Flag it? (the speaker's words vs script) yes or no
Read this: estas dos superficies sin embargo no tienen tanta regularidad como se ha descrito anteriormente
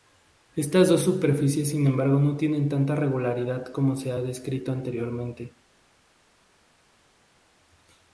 no